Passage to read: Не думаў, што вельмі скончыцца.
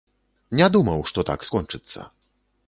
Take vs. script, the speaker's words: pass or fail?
fail